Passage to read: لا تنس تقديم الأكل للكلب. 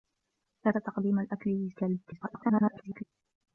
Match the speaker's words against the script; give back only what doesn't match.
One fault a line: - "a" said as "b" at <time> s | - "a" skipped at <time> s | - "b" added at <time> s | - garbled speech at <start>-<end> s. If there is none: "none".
- "تنس" skipped at 0.7 s
- garbled speech at 2.0-3.0 s